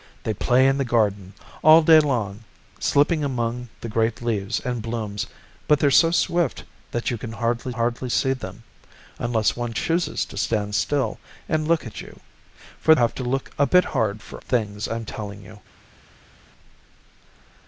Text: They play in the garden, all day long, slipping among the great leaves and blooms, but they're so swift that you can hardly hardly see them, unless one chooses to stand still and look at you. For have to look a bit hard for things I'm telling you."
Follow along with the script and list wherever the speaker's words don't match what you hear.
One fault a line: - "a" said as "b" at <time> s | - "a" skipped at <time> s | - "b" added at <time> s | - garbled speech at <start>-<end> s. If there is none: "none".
none